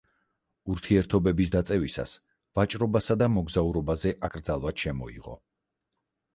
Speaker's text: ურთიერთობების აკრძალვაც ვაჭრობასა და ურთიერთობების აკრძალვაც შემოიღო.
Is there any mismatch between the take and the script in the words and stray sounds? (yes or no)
yes